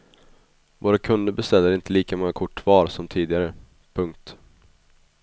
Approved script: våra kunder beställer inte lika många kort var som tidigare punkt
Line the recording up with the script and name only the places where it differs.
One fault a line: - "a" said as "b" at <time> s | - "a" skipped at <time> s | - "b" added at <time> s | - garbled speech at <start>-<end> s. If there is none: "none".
none